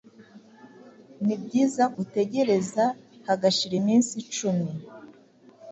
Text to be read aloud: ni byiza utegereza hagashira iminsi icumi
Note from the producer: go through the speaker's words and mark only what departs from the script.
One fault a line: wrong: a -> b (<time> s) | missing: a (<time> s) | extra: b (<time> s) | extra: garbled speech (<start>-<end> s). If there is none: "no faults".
no faults